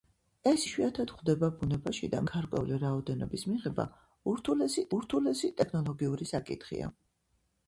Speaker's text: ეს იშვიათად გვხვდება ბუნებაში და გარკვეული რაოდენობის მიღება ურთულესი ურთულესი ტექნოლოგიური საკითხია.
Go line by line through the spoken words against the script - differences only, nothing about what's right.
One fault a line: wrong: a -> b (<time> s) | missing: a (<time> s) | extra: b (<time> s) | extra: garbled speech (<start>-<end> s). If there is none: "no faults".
no faults